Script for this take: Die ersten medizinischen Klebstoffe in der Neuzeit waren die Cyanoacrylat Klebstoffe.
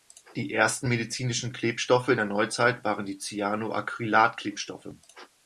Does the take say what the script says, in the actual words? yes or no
yes